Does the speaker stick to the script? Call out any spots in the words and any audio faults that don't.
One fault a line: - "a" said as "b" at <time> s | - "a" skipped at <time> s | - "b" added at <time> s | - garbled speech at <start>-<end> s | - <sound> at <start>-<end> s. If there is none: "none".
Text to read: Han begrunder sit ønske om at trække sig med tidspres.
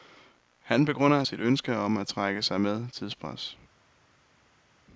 none